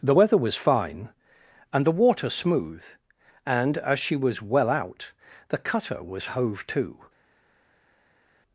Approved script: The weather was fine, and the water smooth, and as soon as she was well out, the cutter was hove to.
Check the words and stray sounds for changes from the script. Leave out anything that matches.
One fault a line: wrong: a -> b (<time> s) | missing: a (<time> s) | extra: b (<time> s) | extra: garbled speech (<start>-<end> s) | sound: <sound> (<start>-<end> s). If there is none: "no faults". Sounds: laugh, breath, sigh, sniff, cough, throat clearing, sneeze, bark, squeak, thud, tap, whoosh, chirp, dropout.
missing: soon as (4.0 s)